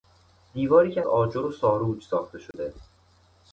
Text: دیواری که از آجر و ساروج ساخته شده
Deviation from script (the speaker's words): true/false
true